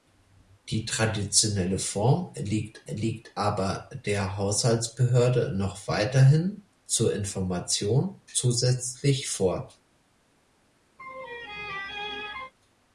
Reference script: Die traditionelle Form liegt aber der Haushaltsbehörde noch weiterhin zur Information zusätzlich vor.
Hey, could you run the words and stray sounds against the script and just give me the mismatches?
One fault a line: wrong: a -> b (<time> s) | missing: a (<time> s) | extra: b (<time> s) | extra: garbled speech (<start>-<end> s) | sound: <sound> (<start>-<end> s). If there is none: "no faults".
extra: liegt (2.9 s)
sound: laugh (11.0-12.5 s)